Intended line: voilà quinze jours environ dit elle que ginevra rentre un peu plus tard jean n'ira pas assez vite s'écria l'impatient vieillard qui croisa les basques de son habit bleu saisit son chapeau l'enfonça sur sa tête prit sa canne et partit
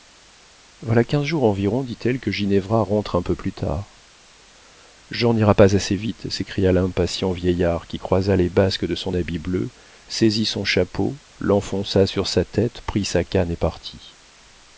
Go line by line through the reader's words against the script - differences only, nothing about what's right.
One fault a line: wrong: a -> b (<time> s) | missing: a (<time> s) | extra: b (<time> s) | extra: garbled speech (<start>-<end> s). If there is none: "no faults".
no faults